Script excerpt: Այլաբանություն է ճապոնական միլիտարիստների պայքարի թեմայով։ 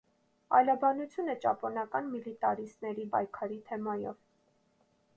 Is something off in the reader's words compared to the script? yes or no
no